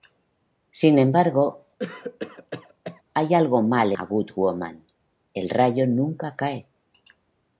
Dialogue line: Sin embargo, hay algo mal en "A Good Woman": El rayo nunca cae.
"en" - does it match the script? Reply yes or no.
no